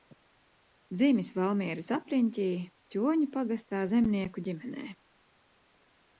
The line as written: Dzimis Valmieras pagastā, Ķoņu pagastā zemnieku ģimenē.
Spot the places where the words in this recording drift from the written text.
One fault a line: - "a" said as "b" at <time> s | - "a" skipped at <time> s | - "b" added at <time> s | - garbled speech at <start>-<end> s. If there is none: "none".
- "pagastā" said as "apriņķī" at 2.0 s